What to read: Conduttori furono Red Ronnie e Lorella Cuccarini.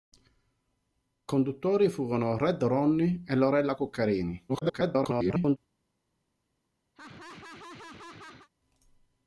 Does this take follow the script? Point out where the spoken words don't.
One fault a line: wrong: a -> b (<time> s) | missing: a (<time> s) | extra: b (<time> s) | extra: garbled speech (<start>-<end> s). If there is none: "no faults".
extra: garbled speech (4.5-5.6 s)